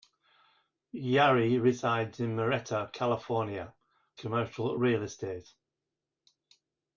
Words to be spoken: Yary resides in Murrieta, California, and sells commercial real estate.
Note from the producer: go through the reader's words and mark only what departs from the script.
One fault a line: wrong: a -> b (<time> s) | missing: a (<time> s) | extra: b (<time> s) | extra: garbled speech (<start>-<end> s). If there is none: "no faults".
missing: and sells (3.8 s)